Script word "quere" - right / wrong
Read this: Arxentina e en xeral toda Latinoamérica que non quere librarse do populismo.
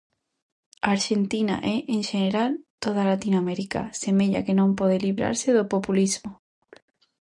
wrong